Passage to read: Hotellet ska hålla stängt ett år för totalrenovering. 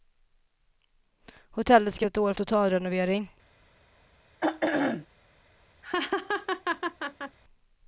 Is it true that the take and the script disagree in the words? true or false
true